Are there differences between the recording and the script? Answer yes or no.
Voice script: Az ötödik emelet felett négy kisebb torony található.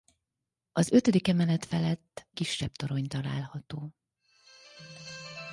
yes